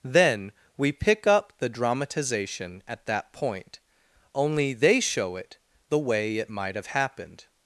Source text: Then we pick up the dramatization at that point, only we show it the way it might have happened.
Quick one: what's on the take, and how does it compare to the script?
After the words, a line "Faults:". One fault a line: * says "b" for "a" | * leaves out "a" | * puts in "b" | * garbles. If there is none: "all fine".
Then we pick up the dramatization at that point, only they show it the way it might have happened.
Faults:
* says "they" for "we"